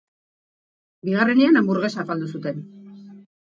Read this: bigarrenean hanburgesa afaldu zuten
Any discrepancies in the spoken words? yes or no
no